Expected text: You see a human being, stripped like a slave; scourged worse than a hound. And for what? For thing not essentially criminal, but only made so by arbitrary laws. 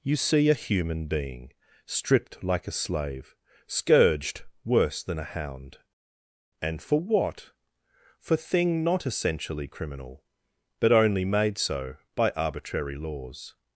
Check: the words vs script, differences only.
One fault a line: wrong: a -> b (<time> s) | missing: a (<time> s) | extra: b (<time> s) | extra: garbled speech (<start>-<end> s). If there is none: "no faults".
no faults